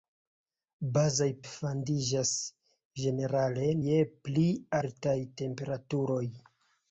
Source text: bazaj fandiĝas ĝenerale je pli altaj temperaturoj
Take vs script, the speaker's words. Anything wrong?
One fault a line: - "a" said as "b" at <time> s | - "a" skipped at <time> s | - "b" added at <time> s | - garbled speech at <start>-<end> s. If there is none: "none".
none